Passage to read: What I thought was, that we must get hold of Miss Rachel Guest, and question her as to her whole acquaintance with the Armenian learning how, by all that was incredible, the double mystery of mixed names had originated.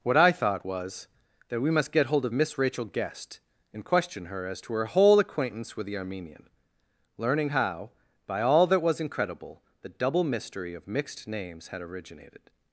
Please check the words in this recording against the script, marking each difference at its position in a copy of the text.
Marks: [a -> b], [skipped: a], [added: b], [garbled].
What I thought was, that we must get hold of Miss Rachel Guest, and question her as to her whole acquaintance with the Armenian learning how, by all that was incredible, the double mystery of mixed names had originated.